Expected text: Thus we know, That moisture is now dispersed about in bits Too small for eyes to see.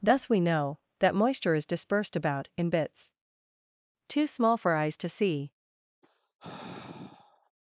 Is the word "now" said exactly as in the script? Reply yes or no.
no